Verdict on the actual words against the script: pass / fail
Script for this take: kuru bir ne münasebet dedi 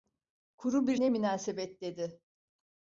pass